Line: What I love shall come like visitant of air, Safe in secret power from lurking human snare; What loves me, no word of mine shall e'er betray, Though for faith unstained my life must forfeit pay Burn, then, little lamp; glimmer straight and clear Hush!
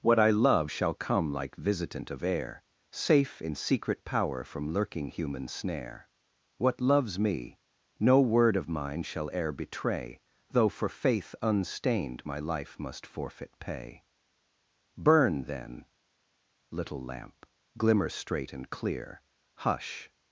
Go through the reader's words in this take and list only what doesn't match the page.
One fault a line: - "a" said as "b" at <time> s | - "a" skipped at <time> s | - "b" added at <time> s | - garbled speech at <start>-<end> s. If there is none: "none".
none